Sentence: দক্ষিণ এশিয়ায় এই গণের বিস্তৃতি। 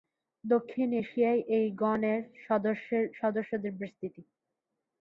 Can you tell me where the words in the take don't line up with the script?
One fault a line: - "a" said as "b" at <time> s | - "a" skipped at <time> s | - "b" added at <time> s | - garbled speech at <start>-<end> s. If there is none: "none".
- "সদস্যদের" added at 3.2 s